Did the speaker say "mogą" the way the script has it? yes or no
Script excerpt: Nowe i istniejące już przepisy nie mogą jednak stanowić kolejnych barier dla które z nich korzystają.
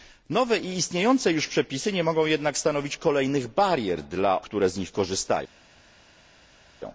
yes